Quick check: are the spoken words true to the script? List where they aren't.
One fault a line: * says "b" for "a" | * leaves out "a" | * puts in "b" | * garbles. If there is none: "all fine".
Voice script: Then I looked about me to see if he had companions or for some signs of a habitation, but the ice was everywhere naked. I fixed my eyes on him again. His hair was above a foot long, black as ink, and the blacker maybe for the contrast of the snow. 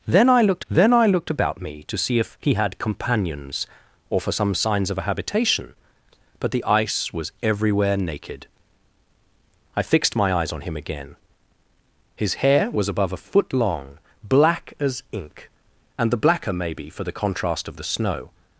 * puts in "then I looked"